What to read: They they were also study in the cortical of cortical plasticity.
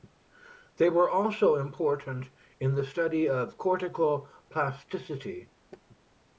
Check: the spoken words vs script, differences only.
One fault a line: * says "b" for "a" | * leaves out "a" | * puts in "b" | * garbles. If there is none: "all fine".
* leaves out "they"
* says "important" for "study"
* says "study" for "cortical"